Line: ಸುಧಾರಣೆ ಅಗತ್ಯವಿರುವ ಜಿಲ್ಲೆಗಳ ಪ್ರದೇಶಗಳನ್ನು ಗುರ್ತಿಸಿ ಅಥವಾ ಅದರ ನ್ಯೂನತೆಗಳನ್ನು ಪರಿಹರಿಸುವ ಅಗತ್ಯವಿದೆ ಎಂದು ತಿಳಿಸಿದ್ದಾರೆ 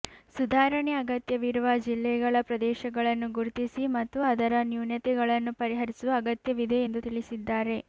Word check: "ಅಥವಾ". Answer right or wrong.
wrong